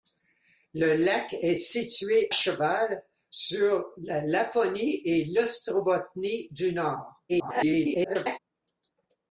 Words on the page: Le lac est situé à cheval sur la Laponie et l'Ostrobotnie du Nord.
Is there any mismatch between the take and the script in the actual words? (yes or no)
yes